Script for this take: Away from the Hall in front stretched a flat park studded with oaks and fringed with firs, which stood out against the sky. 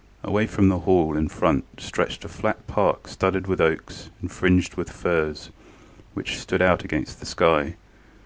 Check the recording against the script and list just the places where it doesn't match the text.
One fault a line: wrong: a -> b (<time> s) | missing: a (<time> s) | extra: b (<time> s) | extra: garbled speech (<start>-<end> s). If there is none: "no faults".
no faults